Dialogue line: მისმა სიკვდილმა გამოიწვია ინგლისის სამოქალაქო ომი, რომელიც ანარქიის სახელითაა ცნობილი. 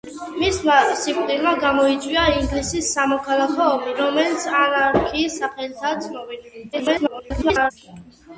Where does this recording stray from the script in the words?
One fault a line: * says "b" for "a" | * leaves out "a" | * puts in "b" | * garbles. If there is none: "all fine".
* garbles